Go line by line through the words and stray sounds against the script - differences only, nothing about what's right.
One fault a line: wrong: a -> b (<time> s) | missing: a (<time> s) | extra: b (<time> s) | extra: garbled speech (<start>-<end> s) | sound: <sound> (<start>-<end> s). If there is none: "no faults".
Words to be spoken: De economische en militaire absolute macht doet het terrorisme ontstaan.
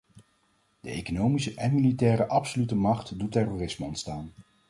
missing: het (3.3 s)